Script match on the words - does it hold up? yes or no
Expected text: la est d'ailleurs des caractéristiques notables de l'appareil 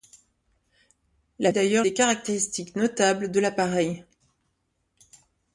yes